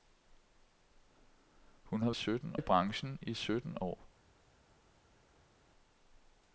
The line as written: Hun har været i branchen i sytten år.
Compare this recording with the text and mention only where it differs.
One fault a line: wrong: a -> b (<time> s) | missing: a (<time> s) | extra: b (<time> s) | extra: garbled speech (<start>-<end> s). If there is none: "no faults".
wrong: været -> sytten (2.1 s)